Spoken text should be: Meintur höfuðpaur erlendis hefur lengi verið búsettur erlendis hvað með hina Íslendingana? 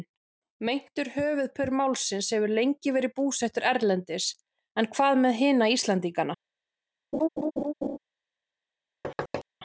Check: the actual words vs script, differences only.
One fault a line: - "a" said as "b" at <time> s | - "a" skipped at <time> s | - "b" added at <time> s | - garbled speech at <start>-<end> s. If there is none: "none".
- "erlendis" said as "málsins" at 1.7 s
- "en" added at 4.8 s